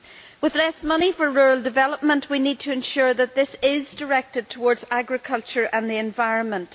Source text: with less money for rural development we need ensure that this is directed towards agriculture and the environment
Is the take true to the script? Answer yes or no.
no